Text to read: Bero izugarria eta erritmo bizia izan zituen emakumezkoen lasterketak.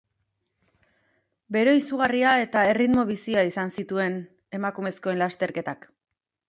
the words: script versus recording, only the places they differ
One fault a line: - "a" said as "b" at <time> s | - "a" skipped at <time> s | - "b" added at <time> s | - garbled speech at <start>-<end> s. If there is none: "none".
none